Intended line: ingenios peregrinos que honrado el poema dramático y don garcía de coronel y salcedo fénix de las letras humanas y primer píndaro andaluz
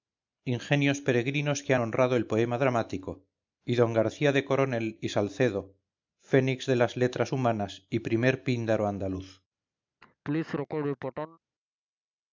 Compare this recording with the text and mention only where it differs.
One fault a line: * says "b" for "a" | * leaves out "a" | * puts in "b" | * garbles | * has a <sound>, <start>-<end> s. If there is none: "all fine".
* has a laugh, 10.0-11.4 s